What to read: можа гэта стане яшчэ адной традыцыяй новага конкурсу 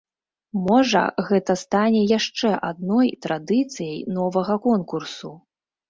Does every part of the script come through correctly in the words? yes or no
yes